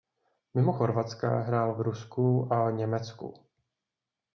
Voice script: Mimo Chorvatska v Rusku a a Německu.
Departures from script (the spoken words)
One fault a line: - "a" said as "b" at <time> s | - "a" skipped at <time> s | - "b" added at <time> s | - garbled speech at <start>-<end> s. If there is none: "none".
- "hrál" added at 1.4 s
- "a" skipped at 2.7 s